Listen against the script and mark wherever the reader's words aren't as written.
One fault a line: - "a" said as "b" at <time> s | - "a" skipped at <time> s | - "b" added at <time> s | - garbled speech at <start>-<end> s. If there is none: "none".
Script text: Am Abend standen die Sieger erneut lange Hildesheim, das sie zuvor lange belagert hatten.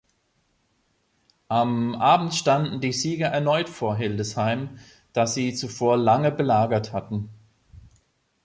- "lange" said as "vor" at 3.7 s